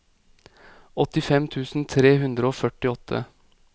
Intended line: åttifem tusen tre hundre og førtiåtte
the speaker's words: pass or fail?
pass